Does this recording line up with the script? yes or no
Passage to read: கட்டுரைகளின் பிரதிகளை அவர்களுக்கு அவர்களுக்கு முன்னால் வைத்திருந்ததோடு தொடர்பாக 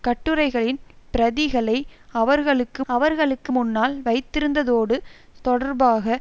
yes